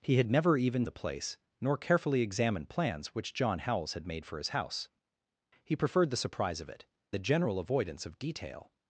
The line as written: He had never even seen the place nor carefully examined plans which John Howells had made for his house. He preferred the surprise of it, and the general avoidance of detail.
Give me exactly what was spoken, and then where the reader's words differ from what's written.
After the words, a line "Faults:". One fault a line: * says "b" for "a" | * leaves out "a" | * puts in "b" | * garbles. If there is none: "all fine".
He had never even the place nor carefully examined plans which John Howells had made for his house. He preferred the surprise of it, the general avoidance of detail.
Faults:
* leaves out "seen"
* leaves out "and"